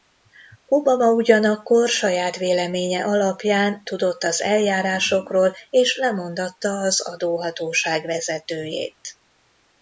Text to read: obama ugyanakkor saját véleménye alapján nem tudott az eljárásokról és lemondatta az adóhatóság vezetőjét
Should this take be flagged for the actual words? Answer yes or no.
yes